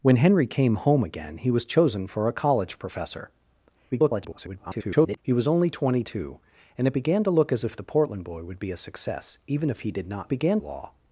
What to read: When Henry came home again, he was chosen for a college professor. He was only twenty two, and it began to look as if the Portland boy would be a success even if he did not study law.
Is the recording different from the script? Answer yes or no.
yes